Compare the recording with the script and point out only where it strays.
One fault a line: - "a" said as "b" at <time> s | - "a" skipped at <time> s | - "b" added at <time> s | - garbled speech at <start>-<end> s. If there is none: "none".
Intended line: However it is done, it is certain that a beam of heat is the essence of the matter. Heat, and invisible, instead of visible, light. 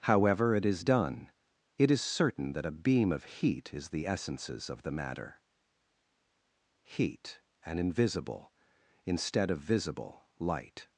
- "essence" said as "essences" at 4.1 s